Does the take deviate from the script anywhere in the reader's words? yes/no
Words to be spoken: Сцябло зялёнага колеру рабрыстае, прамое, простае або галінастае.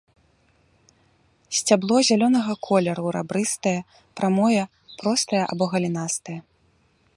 no